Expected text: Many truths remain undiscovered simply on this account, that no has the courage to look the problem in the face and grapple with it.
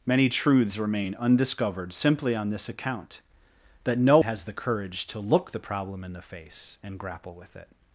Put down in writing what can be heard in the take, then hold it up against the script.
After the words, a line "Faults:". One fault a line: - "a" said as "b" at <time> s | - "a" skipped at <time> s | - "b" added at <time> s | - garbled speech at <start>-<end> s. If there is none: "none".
Many truths remain undiscovered simply on this account, that no has the courage to look the problem in the face and grapple with it.
Faults:
none